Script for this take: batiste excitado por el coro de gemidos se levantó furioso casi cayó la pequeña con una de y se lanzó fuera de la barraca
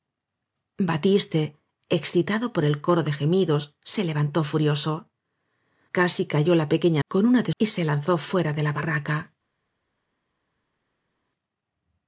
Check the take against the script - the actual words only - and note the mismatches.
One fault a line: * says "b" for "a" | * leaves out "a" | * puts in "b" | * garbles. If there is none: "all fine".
all fine